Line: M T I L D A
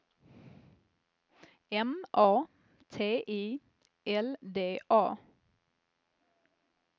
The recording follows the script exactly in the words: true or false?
false